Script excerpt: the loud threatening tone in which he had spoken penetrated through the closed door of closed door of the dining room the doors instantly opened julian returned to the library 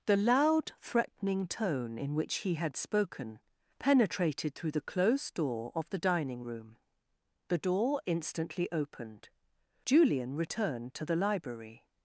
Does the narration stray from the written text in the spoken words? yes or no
yes